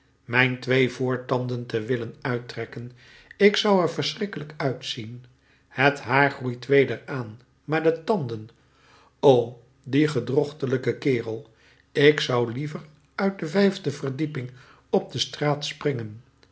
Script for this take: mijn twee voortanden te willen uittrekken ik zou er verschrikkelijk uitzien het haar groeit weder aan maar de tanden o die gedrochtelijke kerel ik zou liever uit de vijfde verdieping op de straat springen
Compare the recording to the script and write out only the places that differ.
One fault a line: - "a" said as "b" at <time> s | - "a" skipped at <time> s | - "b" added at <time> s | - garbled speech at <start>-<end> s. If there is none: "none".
none